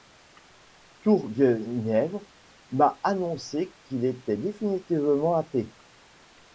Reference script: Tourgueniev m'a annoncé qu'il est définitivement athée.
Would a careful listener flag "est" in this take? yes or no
yes